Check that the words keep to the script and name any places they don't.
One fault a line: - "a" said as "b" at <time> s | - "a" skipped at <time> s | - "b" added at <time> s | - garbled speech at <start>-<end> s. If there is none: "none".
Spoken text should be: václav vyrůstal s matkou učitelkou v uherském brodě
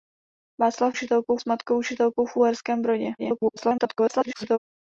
- "vyrůstal" said as "učitelkou" at 0.9 s
- garbled speech at 3.2-4.6 s